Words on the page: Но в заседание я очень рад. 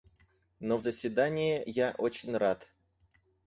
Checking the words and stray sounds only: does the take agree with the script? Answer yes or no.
yes